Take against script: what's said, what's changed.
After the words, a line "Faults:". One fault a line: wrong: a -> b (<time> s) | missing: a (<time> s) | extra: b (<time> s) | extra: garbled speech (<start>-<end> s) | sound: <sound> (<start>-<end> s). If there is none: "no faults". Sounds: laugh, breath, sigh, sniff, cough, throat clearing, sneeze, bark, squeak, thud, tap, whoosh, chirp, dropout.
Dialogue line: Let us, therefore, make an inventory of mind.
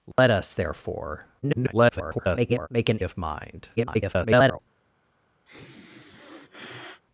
Let us, therefore, [garbled] make an of mind. [garbled]
Faults:
sound: dropout (0.1-0.2 s)
extra: garbled speech (1.4-2.7 s)
missing: inventory (3.0 s)
extra: garbled speech (3.8-4.6 s)
sound: sniff (5.5-7.0 s)